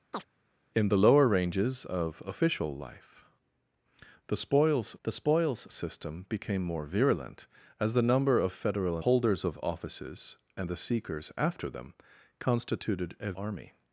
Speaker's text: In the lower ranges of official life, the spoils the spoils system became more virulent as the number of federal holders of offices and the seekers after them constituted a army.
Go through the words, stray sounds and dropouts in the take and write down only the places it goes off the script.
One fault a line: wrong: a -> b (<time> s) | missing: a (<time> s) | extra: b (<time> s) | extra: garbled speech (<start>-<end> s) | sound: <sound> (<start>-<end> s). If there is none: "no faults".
sound: chirp (0.1-0.3 s)